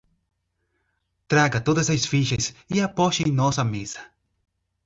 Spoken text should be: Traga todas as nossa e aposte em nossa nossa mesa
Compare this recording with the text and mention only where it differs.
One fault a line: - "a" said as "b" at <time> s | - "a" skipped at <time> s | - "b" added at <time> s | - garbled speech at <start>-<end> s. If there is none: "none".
- "nossa" said as "fichas" at 2.0 s
- "nossa" skipped at 3.7 s